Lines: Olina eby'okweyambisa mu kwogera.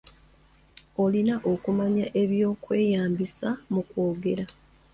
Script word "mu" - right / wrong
right